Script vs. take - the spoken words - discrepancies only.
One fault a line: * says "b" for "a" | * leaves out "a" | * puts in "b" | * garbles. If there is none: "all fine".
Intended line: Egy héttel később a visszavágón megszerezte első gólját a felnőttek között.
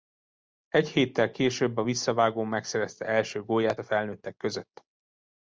all fine